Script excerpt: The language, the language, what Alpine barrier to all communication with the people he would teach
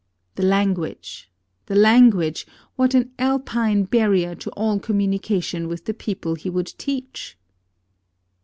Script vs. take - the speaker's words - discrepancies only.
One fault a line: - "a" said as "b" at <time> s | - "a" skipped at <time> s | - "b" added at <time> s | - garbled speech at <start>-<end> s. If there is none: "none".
- "an" added at 3.0 s